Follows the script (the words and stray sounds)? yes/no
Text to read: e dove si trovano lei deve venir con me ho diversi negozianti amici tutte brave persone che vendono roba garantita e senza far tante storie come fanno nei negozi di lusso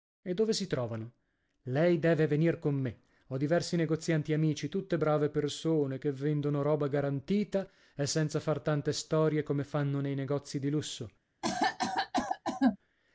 no